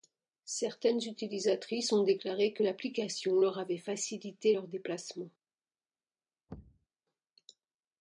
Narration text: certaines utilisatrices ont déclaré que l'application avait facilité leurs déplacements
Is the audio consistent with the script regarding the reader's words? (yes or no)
no